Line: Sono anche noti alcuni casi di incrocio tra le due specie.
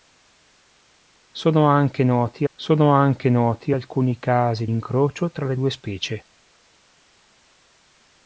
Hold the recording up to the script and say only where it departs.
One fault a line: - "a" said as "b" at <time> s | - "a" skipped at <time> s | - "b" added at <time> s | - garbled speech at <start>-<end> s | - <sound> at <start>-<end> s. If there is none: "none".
- "sono anche noti" added at 2.5 s
- "di" skipped at 4.7 s